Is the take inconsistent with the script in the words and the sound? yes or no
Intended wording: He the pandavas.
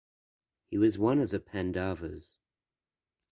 yes